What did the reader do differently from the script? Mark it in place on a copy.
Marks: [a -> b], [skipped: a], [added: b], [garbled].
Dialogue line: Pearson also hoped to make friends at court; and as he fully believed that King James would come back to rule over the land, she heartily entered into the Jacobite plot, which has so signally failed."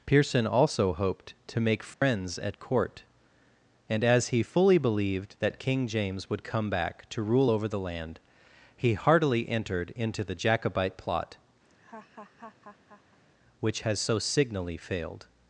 Pearson also hoped to make friends at court; and as he fully believed that King James would come back to rule over the land, [she -> he] heartily entered into the Jacobite plot, which has so signally failed."